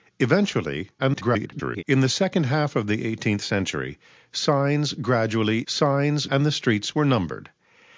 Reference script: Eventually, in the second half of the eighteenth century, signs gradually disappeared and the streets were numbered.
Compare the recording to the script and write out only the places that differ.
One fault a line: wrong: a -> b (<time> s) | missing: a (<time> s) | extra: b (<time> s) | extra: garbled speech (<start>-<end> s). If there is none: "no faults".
extra: garbled speech (1.0-1.8 s)
wrong: disappeared -> signs (5.7 s)